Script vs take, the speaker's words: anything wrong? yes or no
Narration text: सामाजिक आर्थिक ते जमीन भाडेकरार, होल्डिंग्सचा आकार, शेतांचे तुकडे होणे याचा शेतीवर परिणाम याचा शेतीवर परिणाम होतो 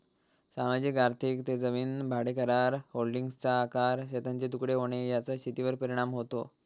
yes